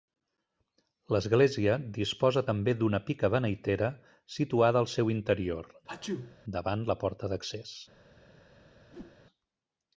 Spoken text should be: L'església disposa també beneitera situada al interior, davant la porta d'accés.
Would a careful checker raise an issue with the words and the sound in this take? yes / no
yes